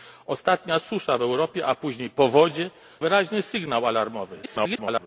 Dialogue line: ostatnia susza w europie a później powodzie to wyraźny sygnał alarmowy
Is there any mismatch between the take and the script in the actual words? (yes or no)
yes